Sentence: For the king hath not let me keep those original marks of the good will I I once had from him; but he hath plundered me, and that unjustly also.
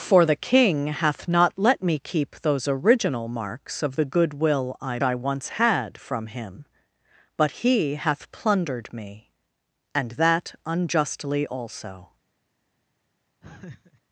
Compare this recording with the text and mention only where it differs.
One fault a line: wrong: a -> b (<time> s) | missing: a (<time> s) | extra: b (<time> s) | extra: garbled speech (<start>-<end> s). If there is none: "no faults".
no faults